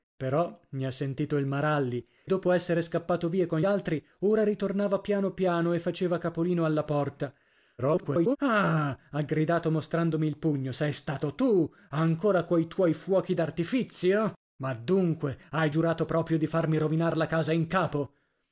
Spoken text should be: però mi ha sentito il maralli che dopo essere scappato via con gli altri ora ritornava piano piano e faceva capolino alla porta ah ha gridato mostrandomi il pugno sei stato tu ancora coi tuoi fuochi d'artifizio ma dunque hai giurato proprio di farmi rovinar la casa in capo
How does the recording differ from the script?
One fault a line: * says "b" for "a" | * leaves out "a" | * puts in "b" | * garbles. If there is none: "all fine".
* leaves out "che"
* leaves out "gli"
* garbles